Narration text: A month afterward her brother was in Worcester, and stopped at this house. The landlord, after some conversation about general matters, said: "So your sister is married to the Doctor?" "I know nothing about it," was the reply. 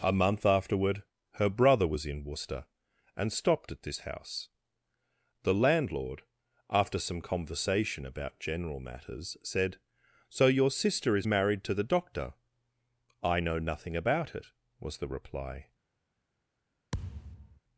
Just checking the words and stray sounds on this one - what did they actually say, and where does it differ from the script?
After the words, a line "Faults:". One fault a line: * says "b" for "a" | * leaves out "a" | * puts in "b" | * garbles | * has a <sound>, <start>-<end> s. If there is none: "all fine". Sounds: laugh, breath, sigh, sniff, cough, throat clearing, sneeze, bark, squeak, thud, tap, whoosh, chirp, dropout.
A month afterward her brother was in Worcester, and stopped at this house. The landlord, after some conversation about general matters, said: "So your sister is married to the Doctor?" "I know nothing about it," was the reply.
Faults:
* has a thud, 16.9-17.6 s